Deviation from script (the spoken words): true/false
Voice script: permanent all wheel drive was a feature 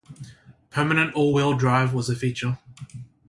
false